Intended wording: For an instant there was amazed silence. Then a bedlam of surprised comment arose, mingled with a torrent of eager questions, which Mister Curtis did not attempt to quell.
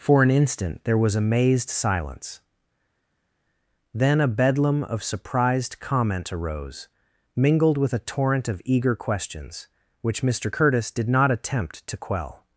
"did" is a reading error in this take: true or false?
false